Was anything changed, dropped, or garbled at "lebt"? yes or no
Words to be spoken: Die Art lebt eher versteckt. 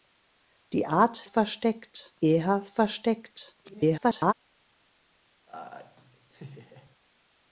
yes